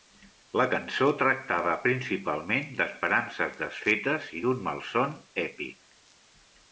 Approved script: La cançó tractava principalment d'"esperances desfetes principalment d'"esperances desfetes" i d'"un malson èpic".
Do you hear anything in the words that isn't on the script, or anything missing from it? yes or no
yes